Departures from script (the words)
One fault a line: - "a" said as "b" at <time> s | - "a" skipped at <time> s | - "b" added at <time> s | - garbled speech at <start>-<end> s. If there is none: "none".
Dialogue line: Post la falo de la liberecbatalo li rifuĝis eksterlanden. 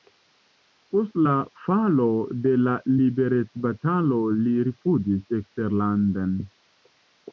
none